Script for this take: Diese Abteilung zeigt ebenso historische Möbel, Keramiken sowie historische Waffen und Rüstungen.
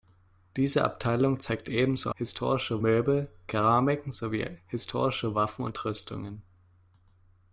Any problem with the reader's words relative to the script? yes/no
no